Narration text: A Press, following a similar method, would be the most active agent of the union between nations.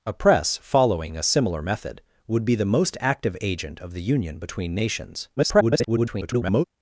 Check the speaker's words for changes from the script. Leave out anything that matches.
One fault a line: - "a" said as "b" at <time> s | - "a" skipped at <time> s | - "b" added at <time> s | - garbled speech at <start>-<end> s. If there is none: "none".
- garbled speech at 5.4-6.6 s